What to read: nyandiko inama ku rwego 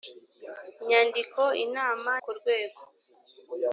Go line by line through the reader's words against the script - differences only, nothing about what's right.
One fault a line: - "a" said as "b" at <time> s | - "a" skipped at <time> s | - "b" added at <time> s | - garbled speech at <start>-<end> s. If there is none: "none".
none